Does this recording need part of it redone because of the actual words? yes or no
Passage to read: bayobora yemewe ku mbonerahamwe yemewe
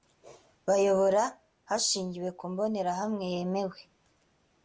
yes